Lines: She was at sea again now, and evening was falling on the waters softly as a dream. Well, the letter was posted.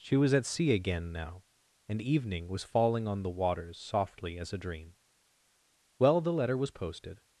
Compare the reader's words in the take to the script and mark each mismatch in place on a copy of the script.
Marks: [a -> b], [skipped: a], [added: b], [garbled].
She was at sea again now, and evening was falling on the waters softly as a dream. Well, the letter was posted.